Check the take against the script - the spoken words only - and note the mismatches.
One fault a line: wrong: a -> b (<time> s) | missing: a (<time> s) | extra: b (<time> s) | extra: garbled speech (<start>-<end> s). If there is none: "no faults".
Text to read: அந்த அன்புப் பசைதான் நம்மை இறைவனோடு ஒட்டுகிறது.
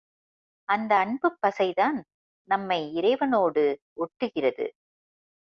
no faults